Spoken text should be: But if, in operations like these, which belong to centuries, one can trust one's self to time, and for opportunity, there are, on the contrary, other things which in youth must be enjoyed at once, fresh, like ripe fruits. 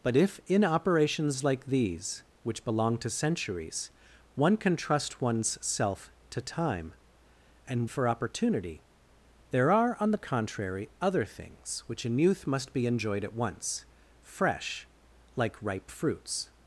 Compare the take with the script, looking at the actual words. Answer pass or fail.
pass